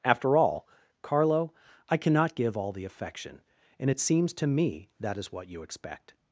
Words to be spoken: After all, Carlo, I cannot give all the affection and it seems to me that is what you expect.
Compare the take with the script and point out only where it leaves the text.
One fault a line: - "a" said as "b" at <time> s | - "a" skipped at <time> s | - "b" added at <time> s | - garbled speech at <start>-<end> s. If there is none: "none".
none